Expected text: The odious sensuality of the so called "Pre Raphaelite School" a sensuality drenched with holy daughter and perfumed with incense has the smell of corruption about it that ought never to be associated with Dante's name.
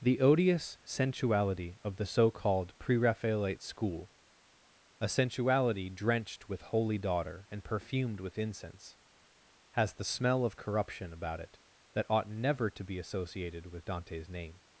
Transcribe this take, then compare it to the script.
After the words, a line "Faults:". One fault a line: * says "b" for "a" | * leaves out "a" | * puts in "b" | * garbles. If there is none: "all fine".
The odious sensuality of the so called "Pre Raphaelite School" a sensuality drenched with holy daughter and perfumed with incense has the smell of corruption about it that ought never to be associated with Dante's name.
Faults:
all fine